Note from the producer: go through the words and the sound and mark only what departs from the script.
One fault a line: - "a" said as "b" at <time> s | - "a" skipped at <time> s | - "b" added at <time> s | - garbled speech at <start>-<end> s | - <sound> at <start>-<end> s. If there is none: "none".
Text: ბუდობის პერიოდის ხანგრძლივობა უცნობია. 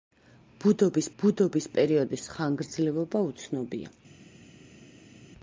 - "ბუდობის" added at 1.2 s